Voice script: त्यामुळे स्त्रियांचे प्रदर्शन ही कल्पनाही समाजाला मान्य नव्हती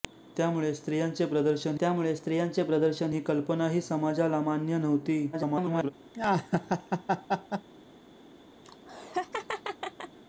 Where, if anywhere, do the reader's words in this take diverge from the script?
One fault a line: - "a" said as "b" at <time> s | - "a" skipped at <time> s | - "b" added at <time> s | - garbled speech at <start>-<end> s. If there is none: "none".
- "त्यामुळे स्त्रियांचे प्रदर्शन" added at 1.8 s
- garbled speech at 5.3-5.9 s